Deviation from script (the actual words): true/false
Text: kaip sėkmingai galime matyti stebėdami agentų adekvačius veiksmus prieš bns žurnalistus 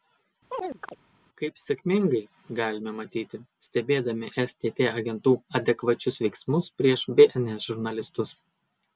true